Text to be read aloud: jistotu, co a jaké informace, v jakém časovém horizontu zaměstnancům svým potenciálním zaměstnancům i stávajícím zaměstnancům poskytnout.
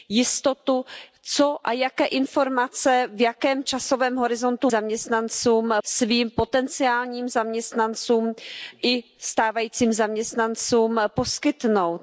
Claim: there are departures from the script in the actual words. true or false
false